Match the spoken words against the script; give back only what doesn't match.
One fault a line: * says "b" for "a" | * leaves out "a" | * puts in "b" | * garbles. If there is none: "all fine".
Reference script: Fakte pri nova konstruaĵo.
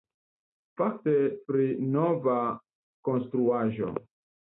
all fine